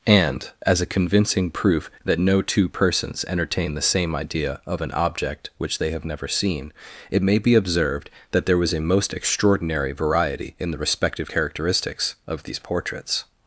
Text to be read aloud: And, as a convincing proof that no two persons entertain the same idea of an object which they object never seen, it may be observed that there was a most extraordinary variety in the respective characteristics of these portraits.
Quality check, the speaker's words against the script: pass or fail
fail